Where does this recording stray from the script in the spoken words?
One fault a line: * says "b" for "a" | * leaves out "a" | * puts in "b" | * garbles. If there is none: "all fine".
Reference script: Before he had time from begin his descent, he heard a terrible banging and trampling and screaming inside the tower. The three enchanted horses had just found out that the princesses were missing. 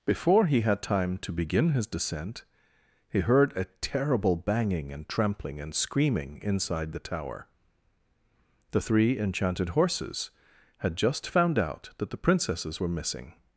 * says "to" for "from"